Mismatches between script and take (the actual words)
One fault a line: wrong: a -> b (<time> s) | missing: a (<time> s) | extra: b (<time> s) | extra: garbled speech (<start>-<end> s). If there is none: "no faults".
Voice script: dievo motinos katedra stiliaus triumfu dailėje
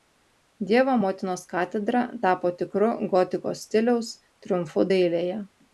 extra: tapo tikru gotikos (2.3 s)